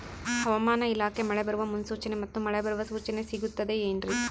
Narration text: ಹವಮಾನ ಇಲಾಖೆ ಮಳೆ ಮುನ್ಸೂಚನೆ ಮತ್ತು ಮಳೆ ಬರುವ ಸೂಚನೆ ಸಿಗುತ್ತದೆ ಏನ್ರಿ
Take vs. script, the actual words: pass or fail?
fail